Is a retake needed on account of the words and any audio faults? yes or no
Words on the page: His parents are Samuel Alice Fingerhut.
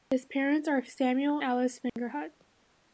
yes